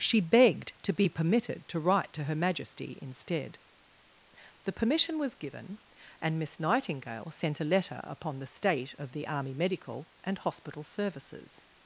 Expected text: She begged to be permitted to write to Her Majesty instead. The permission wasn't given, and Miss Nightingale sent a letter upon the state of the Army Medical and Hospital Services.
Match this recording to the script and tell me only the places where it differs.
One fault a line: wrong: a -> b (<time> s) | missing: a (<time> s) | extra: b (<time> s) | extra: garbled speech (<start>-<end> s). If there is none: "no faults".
wrong: wasn't -> was (5.2 s)